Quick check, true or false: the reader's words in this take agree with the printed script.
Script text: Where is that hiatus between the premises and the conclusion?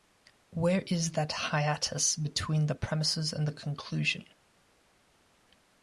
true